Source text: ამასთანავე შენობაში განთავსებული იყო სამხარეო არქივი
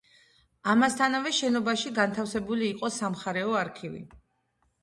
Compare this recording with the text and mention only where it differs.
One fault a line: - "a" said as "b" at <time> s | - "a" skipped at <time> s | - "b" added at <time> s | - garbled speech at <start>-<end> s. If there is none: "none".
none